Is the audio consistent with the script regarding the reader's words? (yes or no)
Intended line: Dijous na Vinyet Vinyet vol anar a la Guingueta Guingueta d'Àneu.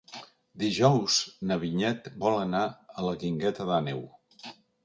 no